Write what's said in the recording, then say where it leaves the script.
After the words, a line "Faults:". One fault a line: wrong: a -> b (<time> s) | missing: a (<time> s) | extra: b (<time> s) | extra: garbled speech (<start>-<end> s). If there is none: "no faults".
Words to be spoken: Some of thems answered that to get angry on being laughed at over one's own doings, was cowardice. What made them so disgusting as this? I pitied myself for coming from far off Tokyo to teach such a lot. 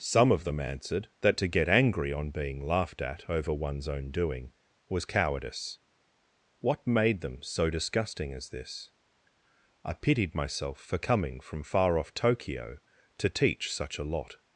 Some of them answered that to get angry on being laughed at over one's own doing, was cowardice. What made them so disgusting as this? I pitied myself for coming from far off Tokyo to teach such a lot.
Faults:
wrong: thems -> them (0.5 s)
wrong: doings -> doing (4.1 s)